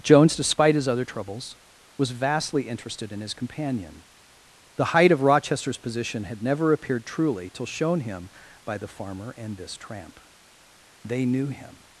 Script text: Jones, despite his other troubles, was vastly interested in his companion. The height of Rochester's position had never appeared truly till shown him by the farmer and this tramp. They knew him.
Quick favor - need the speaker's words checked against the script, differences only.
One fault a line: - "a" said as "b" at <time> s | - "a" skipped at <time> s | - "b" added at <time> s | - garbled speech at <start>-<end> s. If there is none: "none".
none